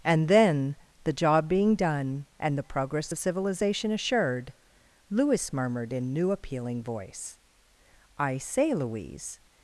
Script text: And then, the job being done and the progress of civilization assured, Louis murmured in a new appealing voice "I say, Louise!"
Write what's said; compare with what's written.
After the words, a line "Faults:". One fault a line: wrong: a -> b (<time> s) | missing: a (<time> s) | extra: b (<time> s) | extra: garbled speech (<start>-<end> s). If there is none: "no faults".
And then, the job being done and the progress of civilization assured, Louis murmured in new appealing voice "I say, Louise!"
Faults:
missing: a (6.1 s)